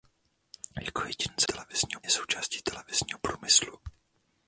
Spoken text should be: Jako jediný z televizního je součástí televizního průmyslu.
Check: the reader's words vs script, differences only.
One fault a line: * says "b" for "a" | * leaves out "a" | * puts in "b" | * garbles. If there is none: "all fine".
all fine